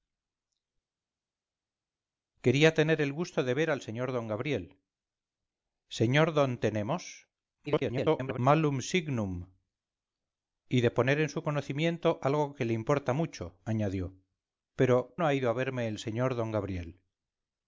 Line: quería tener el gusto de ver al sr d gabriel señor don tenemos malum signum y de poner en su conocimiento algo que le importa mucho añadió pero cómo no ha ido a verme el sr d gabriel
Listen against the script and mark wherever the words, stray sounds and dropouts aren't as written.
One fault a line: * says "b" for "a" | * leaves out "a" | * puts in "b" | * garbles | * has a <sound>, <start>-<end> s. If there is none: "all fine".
* garbles
* leaves out "cómo"